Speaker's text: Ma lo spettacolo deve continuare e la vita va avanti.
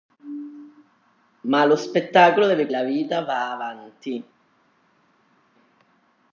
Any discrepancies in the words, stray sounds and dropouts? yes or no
yes